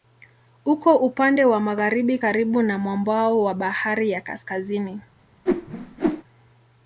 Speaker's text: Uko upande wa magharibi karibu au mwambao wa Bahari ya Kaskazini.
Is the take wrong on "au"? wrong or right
wrong